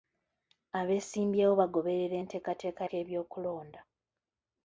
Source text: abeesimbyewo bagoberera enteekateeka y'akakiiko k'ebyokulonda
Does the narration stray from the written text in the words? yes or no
yes